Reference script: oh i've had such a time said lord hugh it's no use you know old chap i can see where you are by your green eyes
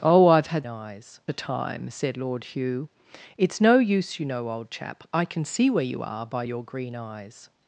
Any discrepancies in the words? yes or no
yes